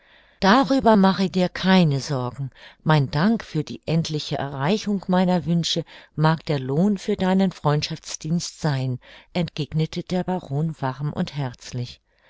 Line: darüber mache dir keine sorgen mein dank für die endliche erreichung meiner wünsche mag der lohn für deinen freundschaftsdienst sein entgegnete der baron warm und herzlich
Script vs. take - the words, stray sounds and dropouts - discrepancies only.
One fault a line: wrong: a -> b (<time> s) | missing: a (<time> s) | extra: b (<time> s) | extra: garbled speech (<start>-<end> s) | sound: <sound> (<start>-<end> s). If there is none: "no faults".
no faults